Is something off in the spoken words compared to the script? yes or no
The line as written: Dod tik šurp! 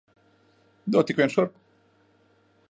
yes